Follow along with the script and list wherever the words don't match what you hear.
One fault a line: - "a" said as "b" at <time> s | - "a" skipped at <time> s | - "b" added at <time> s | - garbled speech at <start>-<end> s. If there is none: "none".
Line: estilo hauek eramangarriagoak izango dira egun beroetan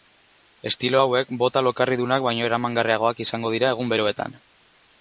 - "bota lokarridunak baino" added at 1.4 s